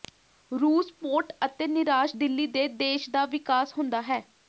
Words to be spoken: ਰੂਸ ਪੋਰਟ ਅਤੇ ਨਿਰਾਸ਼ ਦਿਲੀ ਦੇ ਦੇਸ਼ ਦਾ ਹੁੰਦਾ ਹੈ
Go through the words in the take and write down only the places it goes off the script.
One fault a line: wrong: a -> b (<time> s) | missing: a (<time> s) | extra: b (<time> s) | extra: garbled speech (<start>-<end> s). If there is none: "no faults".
extra: ਵਿਕਾਸ (3.3 s)